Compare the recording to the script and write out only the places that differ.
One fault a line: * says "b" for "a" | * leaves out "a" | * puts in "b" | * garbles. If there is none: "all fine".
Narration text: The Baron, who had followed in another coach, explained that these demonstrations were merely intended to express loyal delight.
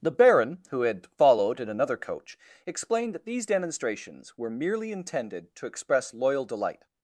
all fine